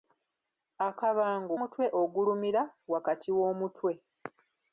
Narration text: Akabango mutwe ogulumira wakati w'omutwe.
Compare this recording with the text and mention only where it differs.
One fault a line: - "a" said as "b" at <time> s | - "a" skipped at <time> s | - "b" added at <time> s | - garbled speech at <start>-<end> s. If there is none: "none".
none